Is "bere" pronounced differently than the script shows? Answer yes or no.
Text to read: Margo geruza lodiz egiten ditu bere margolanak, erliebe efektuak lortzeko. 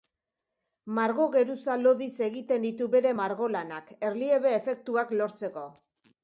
no